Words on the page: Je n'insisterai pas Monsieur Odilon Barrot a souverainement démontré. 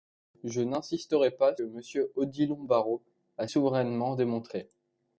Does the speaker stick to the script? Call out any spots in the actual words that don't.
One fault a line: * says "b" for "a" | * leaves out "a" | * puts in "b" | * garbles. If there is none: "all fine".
all fine